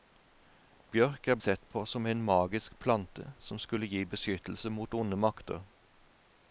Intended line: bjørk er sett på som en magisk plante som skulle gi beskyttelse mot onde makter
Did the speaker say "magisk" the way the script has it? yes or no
yes